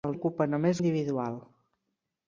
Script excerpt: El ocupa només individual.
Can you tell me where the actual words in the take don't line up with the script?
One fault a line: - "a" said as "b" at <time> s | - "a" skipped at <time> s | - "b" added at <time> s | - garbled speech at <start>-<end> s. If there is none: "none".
none